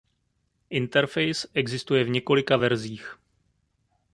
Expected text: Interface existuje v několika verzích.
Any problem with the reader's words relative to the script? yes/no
no